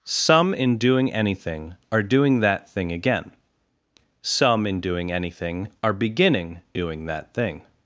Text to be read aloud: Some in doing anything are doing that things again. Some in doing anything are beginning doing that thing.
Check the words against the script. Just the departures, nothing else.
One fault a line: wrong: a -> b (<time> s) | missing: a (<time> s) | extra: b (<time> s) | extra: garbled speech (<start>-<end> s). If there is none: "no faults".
wrong: things -> thing (2.7 s)